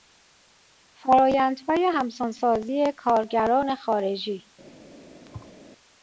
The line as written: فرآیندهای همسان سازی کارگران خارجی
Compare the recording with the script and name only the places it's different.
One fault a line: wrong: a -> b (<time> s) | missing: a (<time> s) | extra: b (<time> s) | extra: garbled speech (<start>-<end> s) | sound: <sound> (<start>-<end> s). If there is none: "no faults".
sound: thud (5.3-5.5 s)